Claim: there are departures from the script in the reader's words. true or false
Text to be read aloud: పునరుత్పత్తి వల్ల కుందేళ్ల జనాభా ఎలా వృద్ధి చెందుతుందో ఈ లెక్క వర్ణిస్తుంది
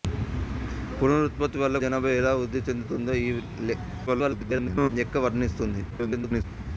true